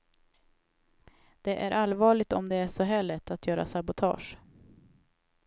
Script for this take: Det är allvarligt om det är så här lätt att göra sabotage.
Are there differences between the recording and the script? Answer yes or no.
no